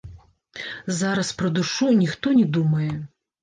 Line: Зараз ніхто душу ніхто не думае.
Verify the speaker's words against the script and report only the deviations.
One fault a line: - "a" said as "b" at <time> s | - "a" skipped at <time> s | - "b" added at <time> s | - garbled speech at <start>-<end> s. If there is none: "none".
- "ніхто" said as "пра" at 1.4 s